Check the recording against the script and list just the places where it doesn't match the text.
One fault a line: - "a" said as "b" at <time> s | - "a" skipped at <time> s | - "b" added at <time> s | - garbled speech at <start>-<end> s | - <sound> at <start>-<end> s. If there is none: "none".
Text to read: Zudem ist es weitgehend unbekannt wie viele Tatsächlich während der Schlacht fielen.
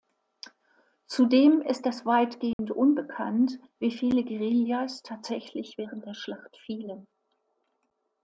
- dropout at 2.5-2.6 s
- "Guerillas" added at 4.2 s